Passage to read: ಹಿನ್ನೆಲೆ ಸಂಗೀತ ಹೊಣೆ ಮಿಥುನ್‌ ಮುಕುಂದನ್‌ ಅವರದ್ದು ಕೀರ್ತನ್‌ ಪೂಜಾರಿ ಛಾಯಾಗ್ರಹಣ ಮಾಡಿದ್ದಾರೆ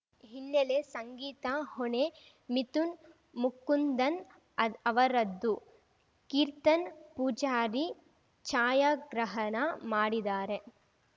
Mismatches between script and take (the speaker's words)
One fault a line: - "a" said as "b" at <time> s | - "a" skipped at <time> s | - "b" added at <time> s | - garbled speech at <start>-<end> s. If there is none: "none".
none